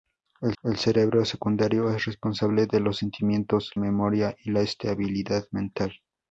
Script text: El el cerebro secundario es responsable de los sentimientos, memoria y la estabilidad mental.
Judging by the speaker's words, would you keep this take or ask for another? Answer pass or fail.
pass